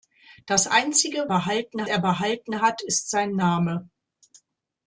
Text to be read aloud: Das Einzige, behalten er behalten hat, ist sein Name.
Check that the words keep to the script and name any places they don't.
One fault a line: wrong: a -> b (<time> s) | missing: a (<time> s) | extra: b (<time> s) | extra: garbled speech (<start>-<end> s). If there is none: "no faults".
no faults